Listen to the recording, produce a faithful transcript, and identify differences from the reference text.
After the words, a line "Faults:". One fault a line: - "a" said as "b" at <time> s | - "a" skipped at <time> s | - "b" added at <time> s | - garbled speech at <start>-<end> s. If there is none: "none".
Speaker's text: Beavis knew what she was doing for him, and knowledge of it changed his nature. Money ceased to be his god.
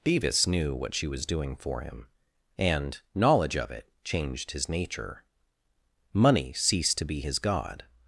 Beavis knew what she was doing for him, and knowledge of it changed his nature. Money ceased to be his god.
Faults:
none